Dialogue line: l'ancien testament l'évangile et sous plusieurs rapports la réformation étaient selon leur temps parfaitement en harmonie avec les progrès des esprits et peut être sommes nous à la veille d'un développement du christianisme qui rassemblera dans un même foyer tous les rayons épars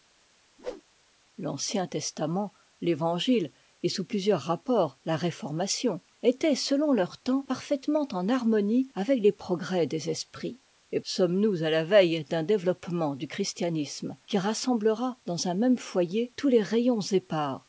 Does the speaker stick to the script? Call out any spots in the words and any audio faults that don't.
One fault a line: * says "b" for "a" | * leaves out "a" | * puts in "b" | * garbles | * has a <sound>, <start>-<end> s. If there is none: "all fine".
* has a whoosh, 0.6-0.8 s
* leaves out "peut être"